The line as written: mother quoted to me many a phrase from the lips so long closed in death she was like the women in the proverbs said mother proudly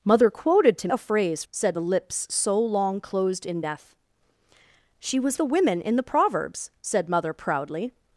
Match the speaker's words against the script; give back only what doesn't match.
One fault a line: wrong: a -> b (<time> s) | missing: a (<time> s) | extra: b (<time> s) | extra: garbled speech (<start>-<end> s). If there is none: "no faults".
missing: me many (0.9 s)
wrong: from -> said (1.5 s)
missing: like (5.4 s)